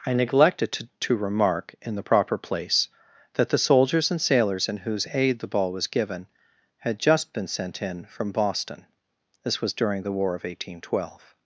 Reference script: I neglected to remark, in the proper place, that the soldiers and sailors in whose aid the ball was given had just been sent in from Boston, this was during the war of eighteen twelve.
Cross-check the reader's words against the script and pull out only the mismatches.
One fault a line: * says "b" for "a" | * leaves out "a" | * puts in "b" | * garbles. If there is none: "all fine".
* puts in "to"